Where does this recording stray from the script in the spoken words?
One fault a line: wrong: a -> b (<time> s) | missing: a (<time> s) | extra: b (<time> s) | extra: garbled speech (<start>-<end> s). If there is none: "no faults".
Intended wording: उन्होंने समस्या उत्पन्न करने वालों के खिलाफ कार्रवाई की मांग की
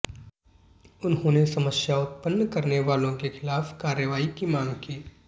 no faults